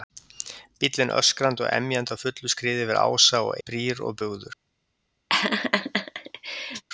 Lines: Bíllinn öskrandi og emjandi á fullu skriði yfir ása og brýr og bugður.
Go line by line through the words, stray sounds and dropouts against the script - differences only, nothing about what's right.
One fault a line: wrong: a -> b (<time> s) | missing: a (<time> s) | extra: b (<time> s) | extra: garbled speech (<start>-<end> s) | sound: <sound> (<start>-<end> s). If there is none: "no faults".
sound: laugh (5.3-6.8 s)